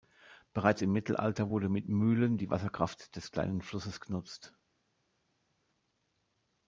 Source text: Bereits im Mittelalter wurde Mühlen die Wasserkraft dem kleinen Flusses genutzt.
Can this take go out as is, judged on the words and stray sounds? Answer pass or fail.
fail